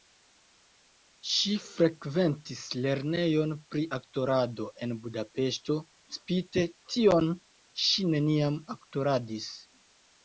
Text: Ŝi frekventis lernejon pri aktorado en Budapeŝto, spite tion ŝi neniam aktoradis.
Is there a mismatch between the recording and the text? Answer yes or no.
no